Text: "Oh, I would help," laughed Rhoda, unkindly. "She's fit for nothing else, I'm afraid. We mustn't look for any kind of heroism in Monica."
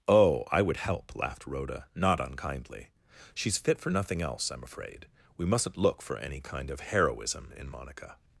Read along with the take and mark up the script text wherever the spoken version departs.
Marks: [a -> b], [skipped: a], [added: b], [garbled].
"Oh, I would help," laughed Rhoda, [added: not] unkindly. "She's fit for nothing else, I'm afraid. We mustn't look for any kind of heroism in Monica."